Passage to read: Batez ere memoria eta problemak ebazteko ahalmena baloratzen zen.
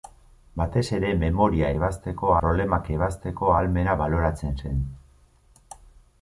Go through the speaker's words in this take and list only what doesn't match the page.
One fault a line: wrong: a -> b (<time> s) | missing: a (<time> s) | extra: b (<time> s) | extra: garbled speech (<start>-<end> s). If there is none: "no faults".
wrong: eta -> ebazteko (1.8 s)